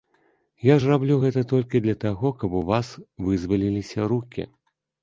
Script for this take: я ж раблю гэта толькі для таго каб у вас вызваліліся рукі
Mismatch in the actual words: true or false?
false